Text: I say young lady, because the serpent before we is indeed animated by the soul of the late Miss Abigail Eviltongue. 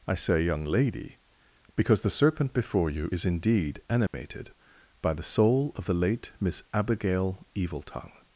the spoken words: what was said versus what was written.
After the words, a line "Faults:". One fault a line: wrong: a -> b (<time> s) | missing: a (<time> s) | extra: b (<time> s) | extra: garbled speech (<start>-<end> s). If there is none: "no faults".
I say young lady, because the serpent before you is indeed animated by the soul of the late Miss Abigail Eviltongue.
Faults:
wrong: we -> you (2.9 s)